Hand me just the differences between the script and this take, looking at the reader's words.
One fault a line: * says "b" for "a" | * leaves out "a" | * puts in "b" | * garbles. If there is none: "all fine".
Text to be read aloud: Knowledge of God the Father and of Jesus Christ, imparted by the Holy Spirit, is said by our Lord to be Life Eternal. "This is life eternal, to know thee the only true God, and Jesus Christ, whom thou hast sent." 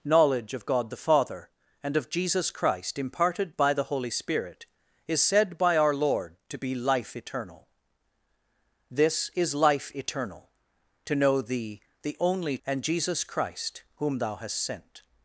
* leaves out "true God"